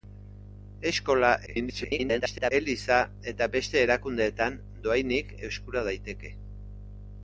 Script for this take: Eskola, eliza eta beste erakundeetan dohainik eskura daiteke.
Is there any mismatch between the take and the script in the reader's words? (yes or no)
yes